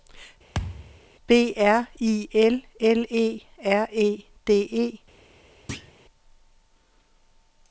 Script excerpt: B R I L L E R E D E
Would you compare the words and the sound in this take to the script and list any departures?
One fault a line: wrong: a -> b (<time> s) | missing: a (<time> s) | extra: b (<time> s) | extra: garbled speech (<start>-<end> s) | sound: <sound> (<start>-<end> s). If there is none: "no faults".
sound: thud (0.5-1.0 s)
sound: thud (5.7-5.9 s)